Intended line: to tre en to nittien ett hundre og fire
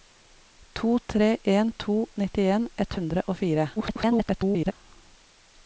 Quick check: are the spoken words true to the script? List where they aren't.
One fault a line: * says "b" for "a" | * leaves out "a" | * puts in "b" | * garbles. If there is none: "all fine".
* garbles